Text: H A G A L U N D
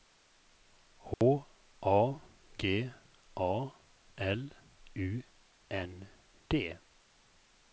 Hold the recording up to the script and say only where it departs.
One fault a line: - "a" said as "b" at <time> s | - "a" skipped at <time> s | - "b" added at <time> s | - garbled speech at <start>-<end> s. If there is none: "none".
none